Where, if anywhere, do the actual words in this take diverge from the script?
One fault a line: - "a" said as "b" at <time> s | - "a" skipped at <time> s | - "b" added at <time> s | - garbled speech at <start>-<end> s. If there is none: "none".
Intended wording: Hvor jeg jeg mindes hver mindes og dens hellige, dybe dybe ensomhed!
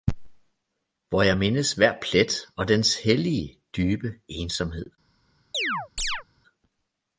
- "jeg" skipped at 1.4 s
- "mindes" said as "plet" at 2.0 s
- "dybe" skipped at 4.1 s